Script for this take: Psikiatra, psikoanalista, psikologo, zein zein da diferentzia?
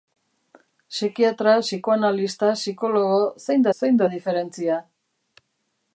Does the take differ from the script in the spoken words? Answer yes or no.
no